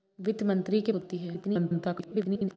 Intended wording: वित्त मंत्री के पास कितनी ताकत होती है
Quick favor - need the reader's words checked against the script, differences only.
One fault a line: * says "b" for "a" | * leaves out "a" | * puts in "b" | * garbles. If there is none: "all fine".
* leaves out "पास कितनी ताकत"
* garbles